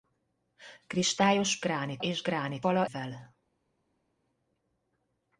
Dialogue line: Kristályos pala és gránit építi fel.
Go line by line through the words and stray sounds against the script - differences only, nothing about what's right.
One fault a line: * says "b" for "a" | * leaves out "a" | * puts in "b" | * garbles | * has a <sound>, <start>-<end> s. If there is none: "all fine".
* says "gránit" for "pala"
* says "pala" for "építi"